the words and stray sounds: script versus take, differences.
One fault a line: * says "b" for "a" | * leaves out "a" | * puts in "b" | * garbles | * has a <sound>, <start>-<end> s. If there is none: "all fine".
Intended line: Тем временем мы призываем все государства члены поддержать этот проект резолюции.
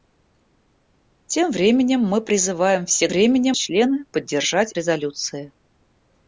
* says "временем" for "государства"
* leaves out "этот проект"